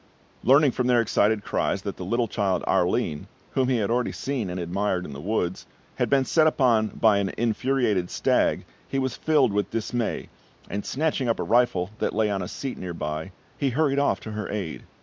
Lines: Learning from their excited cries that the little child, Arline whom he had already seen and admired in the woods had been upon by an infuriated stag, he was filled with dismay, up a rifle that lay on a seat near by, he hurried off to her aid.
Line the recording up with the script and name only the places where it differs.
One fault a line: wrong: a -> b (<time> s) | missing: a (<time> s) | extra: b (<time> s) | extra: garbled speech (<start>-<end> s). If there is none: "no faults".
extra: set (6.2 s)
extra: and snatching (10.7 s)